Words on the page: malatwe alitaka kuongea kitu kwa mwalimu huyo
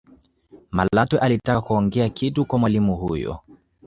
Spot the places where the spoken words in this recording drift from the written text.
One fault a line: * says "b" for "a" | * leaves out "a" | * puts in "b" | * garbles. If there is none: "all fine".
all fine